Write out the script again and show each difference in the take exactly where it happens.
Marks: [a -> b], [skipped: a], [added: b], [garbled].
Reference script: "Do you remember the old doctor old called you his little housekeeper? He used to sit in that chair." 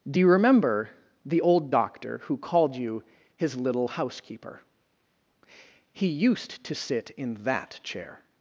"Do you remember the old doctor [old -> who] called you his little housekeeper? He used to sit in that chair."